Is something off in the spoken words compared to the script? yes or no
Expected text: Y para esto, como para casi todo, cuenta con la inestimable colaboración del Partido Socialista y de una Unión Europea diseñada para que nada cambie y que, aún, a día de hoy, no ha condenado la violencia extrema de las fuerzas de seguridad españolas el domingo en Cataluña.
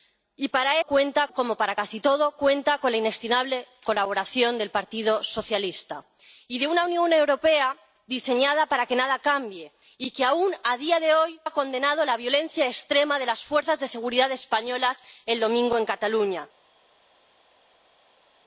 yes